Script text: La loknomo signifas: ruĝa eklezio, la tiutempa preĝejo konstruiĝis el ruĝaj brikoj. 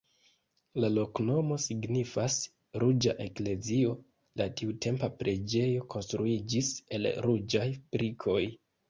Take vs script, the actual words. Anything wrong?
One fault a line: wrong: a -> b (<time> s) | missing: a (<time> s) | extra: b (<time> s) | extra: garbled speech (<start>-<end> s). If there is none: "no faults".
no faults